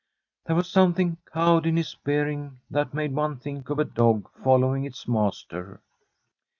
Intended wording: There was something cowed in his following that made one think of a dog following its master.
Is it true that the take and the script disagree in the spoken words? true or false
true